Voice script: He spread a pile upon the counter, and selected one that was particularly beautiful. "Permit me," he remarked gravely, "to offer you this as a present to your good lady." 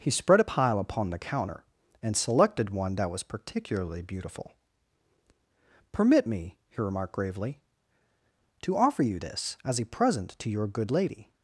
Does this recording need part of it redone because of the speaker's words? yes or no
no